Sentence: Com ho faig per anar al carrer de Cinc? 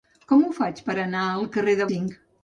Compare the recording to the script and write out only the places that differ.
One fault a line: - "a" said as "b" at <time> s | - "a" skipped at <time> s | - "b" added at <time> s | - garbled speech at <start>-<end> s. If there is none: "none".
none